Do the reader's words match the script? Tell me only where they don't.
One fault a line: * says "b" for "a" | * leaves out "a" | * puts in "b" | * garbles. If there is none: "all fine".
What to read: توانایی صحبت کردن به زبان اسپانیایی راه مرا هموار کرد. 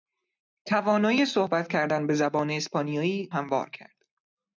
* leaves out "راه مرا"